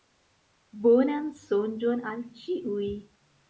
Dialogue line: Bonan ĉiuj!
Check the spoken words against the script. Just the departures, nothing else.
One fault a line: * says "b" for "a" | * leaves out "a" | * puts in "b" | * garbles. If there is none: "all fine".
* puts in "sonĝon al"